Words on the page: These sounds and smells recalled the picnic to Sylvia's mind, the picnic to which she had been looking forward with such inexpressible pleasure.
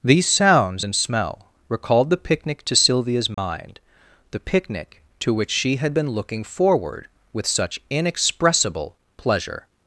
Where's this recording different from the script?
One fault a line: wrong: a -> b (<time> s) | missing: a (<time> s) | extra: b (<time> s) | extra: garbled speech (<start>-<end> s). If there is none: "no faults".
wrong: smells -> smell (1.0 s)